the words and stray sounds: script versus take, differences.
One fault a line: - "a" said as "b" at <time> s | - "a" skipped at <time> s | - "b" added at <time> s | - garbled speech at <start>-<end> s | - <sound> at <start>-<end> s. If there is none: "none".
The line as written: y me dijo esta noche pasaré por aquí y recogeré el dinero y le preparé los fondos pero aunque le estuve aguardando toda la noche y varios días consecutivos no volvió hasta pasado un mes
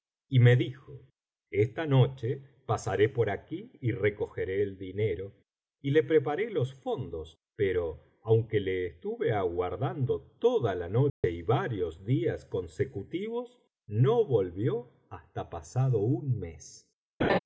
- dropout at 11.1-11.2 s
- laugh at 17.2-17.4 s